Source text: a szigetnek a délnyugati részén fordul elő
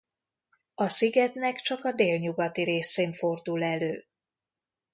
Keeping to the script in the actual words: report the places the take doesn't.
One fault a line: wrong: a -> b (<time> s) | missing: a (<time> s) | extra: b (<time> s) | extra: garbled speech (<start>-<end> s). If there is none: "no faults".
extra: csak (1.6 s)